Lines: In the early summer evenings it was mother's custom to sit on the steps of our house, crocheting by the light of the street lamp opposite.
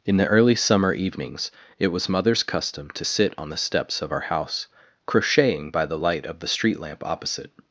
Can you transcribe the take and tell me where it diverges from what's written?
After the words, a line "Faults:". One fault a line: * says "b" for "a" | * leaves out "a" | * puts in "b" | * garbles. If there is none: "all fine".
In the early summer evenings it was mother's custom to sit on the steps of our house, crocheting by the light of the street lamp opposite.
Faults:
all fine